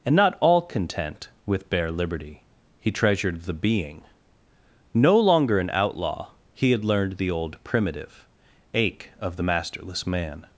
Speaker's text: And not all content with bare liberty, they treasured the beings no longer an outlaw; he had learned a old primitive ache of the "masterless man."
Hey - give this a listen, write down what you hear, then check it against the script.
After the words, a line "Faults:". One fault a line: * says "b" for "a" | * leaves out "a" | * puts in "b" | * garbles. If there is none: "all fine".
And not all content with bare liberty, he treasured the being no longer an outlaw; he had learned the old primitive ache of the "masterless man."
Faults:
* says "he" for "they"
* says "being" for "beings"
* says "the" for "a"